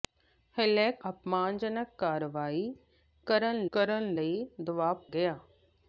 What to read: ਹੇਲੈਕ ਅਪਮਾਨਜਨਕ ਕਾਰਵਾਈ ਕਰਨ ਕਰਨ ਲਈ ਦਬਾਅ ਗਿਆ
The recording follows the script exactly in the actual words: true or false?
true